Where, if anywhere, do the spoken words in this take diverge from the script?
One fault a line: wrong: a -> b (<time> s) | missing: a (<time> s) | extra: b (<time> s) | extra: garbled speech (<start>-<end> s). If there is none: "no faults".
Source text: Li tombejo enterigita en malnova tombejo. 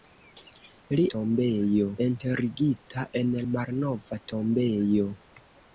no faults